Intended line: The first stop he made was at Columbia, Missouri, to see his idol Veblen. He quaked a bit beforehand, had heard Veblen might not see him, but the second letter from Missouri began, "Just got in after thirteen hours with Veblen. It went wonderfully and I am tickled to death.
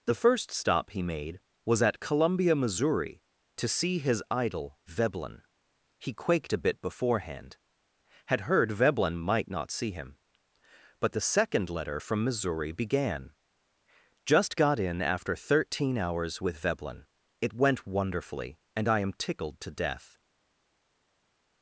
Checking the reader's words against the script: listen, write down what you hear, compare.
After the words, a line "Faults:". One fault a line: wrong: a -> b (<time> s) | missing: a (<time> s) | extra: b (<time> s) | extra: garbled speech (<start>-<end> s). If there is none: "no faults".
The first stop he made was at Columbia, Missouri, to see his idol Veblen. He quaked a bit beforehand, had heard Veblen might not see him, but the second letter from Missouri began, "Just got in after thirteen hours with Veblen. It went wonderfully and I am tickled to death.
Faults:
no faults